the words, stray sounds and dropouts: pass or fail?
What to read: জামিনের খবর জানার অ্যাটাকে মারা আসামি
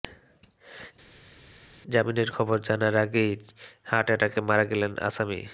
fail